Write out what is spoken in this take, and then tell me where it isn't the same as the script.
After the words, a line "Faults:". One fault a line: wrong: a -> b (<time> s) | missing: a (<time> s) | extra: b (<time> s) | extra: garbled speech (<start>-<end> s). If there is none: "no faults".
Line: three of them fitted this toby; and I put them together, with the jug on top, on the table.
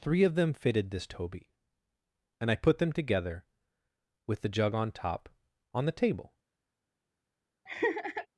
three of them fitted this toby; and I put them together, with the jug on top, on the table.
Faults:
no faults